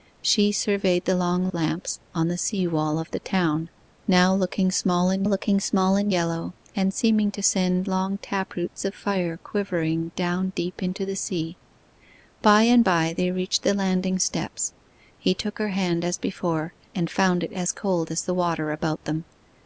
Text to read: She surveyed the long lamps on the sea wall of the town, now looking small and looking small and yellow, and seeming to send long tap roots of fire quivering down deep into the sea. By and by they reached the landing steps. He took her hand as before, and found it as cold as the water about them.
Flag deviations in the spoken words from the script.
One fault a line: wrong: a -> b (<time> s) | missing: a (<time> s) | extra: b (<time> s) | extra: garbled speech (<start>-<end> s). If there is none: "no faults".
no faults